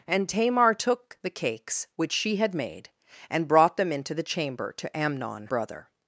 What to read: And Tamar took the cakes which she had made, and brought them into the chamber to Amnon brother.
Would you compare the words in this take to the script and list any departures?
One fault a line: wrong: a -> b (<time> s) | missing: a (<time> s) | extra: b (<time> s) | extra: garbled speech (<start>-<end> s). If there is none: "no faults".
no faults